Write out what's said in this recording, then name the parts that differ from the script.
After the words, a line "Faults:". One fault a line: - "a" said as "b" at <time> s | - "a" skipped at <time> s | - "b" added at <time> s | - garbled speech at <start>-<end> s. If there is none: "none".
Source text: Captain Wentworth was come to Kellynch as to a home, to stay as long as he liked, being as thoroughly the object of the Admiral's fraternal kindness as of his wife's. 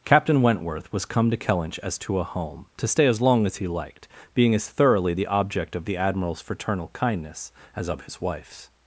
Captain Wentworth was come to Kellynch as to a home, to stay as long as he liked, being as thoroughly the object of the Admiral's fraternal kindness as of his wife's.
Faults:
none